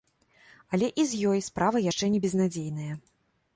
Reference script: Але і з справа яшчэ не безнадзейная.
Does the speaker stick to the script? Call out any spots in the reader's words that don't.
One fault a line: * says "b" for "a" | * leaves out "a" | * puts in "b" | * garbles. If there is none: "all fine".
* puts in "ёй"